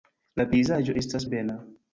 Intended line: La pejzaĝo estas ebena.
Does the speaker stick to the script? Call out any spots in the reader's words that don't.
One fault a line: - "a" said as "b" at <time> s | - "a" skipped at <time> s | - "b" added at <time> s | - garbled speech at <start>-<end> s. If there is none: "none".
none